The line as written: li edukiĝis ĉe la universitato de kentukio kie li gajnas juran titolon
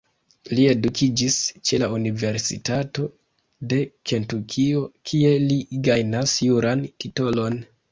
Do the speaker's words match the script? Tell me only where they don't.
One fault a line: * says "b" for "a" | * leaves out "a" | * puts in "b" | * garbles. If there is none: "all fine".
all fine